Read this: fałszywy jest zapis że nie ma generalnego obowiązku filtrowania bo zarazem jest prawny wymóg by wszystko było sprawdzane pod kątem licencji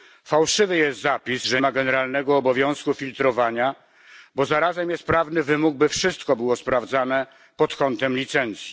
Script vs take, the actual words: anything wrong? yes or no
yes